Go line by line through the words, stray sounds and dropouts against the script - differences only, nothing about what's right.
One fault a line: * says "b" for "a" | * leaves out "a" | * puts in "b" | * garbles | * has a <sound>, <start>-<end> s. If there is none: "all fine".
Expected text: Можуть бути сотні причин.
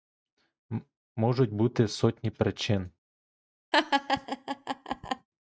* has a laugh, 3.7-5.3 s